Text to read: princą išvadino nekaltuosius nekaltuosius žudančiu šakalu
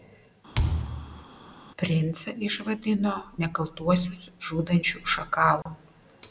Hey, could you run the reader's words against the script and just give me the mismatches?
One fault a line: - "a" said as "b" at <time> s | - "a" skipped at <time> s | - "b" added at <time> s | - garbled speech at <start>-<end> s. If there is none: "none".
- "nekaltuosius" skipped at 4.2 s